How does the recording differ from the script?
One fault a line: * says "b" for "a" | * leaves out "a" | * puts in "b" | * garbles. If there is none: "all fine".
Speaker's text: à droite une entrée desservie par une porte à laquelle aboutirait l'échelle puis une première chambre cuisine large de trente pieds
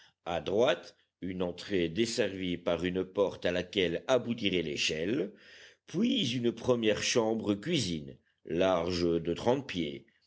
all fine